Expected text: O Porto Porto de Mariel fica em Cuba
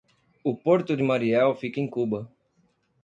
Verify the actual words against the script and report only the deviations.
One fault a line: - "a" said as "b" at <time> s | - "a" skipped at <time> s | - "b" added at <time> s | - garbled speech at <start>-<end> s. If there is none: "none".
- "Porto" skipped at 1.0 s